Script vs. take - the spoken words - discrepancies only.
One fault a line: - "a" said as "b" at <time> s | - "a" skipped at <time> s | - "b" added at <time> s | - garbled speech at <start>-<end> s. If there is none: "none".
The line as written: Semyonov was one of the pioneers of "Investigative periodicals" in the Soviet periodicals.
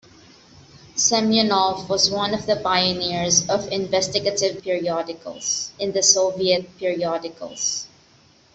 none